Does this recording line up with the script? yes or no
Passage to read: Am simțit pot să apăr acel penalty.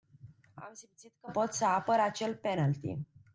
no